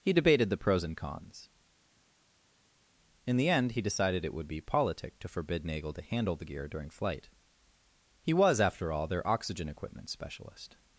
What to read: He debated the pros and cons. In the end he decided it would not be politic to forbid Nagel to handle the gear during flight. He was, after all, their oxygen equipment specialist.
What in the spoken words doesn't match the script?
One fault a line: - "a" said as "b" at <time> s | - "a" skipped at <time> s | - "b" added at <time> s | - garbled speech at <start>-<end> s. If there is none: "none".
- "not" skipped at 4.5 s